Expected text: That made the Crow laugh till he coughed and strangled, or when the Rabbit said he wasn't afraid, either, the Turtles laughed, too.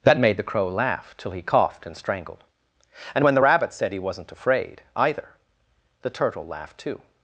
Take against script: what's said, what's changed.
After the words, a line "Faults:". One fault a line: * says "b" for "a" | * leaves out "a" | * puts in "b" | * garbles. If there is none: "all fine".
That made the Crow laugh till he coughed and strangled, and when the Rabbit said he wasn't afraid, either, the Turtle laughed, too.
Faults:
* says "and" for "or"
* says "Turtle" for "Turtles"